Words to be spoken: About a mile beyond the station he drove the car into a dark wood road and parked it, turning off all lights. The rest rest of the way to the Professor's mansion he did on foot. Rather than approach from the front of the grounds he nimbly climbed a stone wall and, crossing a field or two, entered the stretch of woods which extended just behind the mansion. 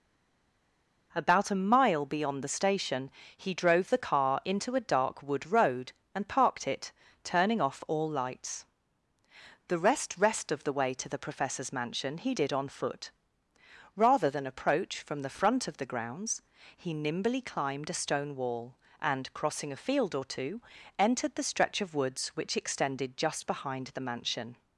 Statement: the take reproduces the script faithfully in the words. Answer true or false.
true